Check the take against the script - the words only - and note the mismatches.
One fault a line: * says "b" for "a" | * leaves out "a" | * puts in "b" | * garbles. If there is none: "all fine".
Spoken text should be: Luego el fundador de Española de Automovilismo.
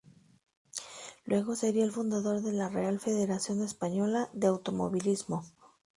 * puts in "sería"
* puts in "la Real Federación"